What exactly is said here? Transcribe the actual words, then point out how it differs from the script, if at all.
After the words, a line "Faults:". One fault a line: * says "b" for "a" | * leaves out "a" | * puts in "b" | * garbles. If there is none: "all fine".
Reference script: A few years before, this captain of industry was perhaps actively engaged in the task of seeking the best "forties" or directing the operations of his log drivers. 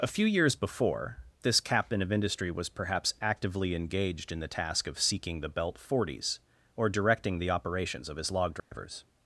A few years before, this captain of industry was perhaps actively engaged in the task of seeking the belt "forties" or directing the operations of his log drivers.
Faults:
* says "belt" for "best"